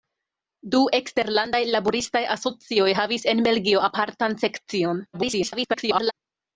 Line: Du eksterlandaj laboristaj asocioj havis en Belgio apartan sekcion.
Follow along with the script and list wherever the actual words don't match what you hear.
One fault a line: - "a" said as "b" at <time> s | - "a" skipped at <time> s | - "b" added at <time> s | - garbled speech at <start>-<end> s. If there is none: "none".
- garbled speech at 5.1-6.1 s